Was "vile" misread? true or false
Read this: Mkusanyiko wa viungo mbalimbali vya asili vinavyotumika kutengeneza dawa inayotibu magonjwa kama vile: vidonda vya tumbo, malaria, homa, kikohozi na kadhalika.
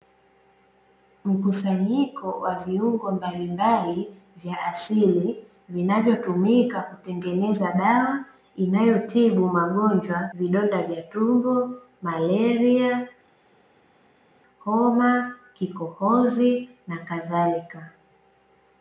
true